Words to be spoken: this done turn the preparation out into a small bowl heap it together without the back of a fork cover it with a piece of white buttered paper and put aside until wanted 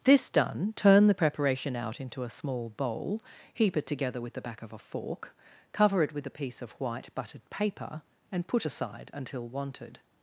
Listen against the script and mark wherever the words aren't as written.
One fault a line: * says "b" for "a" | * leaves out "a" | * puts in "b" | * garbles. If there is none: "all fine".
* says "with" for "without"